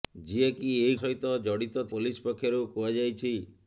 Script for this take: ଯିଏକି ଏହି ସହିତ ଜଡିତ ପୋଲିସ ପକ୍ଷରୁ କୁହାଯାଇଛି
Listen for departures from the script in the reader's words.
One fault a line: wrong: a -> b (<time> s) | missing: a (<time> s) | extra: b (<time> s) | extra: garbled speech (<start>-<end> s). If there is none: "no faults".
no faults